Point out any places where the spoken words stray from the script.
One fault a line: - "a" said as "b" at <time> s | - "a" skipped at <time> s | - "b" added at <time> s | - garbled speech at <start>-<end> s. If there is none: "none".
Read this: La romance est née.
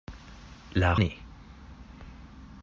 - "romance est" skipped at 0.9 s